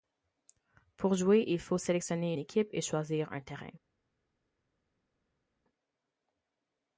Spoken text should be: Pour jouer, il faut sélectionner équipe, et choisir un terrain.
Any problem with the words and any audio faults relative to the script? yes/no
no